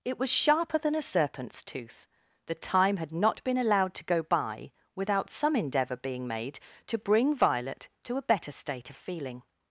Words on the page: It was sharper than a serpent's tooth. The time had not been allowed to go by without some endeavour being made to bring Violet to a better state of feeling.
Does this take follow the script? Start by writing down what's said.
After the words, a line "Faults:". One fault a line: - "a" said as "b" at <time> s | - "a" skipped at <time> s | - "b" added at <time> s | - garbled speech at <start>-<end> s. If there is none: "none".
It was sharper than a serpent's tooth. The time had not been allowed to go by without some endeavour being made to bring Violet to a better state of feeling.
Faults:
none